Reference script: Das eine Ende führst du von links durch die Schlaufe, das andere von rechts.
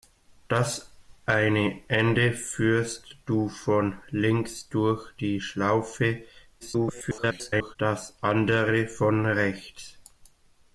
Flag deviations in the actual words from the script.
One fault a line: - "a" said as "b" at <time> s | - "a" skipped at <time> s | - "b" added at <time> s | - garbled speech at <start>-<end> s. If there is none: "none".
- garbled speech at 6.6-7.8 s